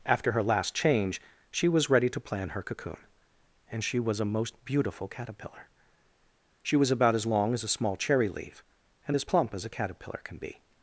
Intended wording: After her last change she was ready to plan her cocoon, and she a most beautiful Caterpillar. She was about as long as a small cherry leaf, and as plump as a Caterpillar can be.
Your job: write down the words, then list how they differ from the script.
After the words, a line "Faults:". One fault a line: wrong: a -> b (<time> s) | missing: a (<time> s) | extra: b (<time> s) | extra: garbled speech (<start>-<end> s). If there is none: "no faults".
After her last change she was ready to plan her cocoon, and she was a most beautiful Caterpillar. She was about as long as a small cherry leaf, and as plump as a Caterpillar can be.
Faults:
extra: was (4.0 s)